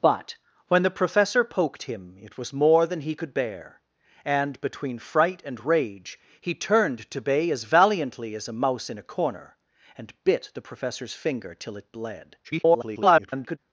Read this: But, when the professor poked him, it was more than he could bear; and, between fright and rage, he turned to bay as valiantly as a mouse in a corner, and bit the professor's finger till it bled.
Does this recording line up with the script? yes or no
no